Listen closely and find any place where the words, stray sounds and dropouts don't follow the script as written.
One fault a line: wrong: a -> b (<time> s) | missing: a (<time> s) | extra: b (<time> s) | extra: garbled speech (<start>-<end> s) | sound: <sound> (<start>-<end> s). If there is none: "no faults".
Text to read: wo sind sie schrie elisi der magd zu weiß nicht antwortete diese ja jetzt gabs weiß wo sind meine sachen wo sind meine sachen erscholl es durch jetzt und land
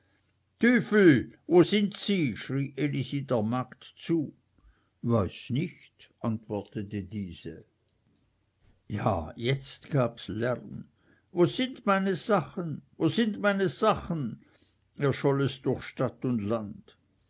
wrong: weiß -> lärm (10.3 s)
wrong: jetzt -> stadt (15.8 s)